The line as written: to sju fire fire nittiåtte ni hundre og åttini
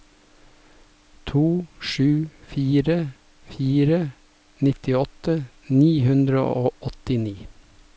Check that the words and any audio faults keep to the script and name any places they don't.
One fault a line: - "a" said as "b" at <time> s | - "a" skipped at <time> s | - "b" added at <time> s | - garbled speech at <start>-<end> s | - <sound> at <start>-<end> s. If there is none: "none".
none